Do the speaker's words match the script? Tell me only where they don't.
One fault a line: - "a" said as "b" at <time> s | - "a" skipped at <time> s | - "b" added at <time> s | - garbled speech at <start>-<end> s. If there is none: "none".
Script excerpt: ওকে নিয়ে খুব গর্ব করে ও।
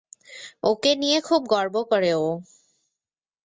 none